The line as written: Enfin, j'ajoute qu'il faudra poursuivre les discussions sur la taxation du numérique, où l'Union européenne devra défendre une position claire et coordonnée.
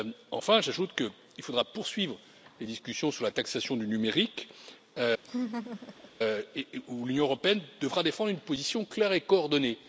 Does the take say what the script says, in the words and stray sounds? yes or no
no